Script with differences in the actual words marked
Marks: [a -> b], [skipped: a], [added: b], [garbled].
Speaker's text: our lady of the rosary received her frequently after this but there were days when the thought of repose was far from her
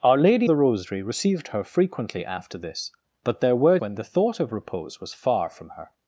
our lady [skipped: of] the rosary received her frequently after this but there were [skipped: days] when the thought of repose was far from her